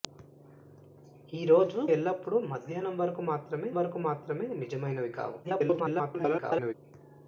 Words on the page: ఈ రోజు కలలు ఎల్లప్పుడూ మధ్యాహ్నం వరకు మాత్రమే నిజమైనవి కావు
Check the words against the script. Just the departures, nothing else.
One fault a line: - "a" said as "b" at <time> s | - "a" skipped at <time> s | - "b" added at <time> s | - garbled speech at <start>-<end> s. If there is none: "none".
- "కలలు" skipped at 1.8 s
- "వరకు మాత్రమే" added at 3.7 s
- garbled speech at 5.4-6.7 s